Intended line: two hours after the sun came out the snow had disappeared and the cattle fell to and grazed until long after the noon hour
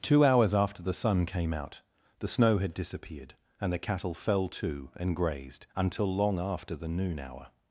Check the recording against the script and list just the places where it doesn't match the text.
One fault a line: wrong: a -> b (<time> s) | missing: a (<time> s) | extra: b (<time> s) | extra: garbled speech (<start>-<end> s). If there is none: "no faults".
no faults